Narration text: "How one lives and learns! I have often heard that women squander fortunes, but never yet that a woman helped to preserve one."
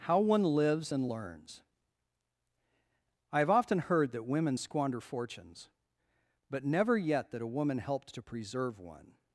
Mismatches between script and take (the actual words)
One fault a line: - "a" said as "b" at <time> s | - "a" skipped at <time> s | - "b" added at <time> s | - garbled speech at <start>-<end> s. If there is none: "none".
none